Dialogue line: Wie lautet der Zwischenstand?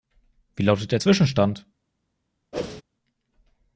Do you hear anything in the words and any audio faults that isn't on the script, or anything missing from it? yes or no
yes